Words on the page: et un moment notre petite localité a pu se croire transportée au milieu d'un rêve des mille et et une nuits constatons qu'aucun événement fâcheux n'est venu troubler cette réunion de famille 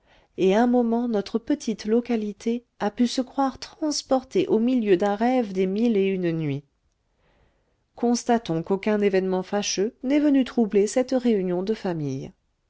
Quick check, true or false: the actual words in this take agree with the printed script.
false